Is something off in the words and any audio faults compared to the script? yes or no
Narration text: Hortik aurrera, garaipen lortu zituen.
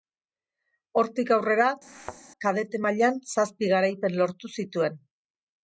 yes